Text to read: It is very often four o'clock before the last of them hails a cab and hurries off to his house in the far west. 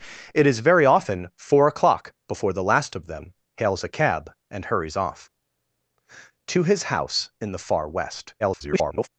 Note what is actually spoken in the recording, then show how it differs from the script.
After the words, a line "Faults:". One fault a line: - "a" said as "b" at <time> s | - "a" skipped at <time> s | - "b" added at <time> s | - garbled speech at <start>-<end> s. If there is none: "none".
It is very often four o'clock before the last of them hails a cab and hurries off to his house in the far west. [garbled]
Faults:
- garbled speech at 8.4-9.1 s